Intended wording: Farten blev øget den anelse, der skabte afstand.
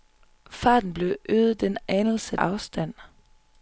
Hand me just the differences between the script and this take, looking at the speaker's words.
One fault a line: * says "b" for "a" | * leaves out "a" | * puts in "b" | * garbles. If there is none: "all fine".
* leaves out "der skabte"